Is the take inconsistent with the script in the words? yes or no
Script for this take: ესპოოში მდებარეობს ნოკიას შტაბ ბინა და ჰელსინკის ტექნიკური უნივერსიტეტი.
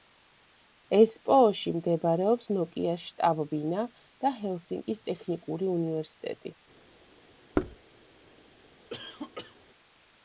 no